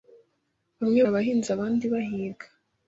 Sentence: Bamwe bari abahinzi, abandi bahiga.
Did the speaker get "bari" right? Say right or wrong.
wrong